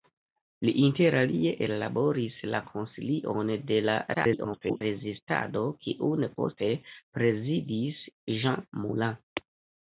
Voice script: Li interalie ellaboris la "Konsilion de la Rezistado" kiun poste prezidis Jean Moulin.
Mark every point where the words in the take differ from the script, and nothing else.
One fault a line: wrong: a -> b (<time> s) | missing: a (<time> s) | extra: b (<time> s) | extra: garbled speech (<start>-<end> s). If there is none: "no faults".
extra: garbled speech (4.1-4.8 s)